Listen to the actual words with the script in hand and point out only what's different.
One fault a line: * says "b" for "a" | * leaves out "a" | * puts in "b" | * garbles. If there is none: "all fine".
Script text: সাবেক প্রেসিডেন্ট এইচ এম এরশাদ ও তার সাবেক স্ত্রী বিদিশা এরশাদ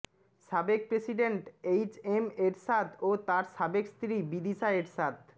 all fine